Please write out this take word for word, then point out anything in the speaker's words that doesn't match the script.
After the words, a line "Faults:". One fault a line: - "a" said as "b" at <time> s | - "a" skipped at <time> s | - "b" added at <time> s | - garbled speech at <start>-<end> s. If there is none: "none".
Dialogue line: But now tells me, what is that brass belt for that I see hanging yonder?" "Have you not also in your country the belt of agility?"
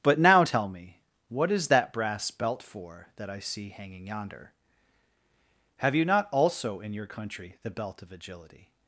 But now tell me, what is that brass belt for that I see hanging yonder?" "Have you not also in your country the belt of agility?"
Faults:
- "tells" said as "tell" at 0.4 s